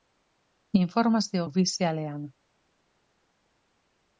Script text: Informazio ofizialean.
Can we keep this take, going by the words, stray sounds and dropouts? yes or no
yes